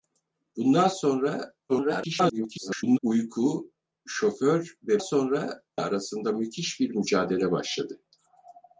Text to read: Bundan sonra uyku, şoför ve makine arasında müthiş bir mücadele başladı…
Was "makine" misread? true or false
true